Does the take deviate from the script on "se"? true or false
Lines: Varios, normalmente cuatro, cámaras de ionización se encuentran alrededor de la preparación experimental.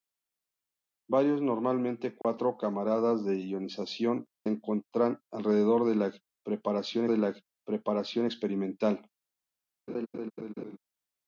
true